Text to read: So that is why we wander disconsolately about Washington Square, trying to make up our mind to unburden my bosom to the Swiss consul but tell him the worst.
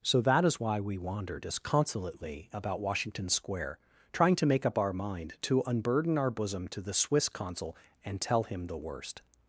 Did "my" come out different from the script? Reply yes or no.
yes